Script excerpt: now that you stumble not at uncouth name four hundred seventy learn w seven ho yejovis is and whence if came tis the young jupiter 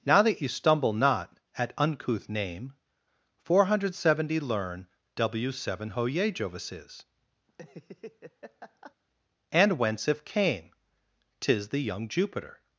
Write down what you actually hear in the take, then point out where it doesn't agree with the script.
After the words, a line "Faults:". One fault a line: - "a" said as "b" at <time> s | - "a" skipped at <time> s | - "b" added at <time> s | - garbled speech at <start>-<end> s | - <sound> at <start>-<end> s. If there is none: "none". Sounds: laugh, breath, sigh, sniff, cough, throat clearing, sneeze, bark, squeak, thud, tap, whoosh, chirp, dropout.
now that you stumble not at uncouth name four hundred seventy learn w seven ho yejovis is and whence if came tis the young jupiter
Faults:
- laugh at 7.5-8.9 s